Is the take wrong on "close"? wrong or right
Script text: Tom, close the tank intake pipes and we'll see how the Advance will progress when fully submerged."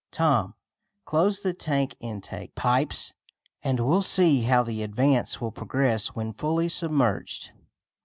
right